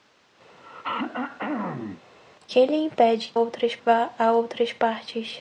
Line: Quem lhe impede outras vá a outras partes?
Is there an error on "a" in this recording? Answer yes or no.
no